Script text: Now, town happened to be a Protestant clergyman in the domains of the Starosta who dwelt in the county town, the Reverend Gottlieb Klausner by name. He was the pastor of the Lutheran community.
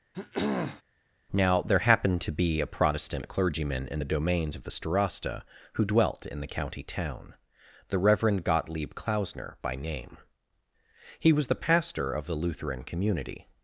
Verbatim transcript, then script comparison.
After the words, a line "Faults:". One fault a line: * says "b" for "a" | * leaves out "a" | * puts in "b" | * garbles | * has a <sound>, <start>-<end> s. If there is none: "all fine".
Now, there happened to be a Protestant clergyman in the domains of the Starosta who dwelt in the county town, the Reverend Gottlieb Klausner by name. He was the pastor of the Lutheran community.
Faults:
* has a throat clearing, 0.1-0.8 s
* says "there" for "town"